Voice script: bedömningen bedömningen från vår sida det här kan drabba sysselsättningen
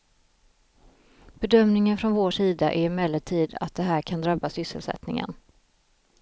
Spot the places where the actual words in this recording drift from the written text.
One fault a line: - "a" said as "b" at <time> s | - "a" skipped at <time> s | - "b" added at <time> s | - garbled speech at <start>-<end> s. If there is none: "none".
- "bedömningen" skipped at 2.0 s
- "är emellertid att" added at 2.7 s